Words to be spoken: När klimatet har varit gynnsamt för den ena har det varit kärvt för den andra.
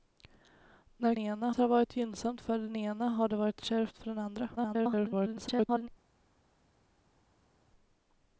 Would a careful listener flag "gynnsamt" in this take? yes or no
no